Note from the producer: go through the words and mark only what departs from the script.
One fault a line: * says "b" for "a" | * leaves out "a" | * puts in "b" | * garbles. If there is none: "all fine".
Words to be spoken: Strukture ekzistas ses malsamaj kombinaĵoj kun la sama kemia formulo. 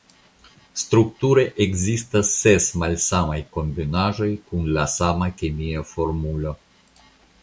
all fine